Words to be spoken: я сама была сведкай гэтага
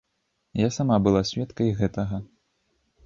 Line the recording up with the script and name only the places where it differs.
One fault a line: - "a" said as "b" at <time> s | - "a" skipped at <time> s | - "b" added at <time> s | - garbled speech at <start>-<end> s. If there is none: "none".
none